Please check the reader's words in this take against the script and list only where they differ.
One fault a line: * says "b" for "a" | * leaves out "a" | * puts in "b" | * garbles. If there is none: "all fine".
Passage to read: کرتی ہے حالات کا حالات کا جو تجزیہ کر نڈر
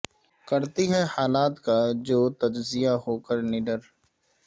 * leaves out "حالات کا"
* puts in "ہو"